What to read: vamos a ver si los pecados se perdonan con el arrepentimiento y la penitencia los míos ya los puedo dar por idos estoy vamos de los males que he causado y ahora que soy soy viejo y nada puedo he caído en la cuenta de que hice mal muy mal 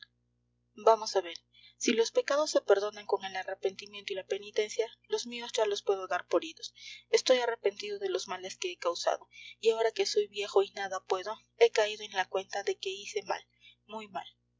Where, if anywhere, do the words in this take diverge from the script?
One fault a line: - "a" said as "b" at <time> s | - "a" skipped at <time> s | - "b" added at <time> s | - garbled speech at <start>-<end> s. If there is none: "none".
- "vamos" said as "arrepentido" at 7.4 s
- "soy" skipped at 10.3 s